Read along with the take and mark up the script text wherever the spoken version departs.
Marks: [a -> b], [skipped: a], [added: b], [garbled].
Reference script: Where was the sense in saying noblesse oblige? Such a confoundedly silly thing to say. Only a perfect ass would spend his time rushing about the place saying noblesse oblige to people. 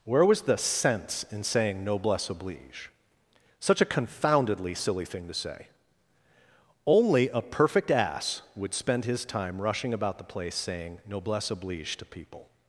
Where was the sense in saying noblesse oblige? Such a confoundedly silly thing to say. Only a perfect ass would spend his time rushing about the place saying noblesse oblige to people.